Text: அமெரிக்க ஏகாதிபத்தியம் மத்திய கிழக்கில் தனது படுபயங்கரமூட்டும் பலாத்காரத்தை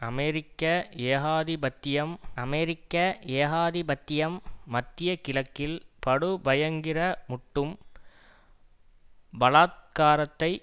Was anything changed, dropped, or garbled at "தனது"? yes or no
yes